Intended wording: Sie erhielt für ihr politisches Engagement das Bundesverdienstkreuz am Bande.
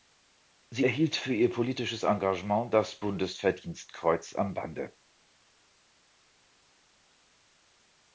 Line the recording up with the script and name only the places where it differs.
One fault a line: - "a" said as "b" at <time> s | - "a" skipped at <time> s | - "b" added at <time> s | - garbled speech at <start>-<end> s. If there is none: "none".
none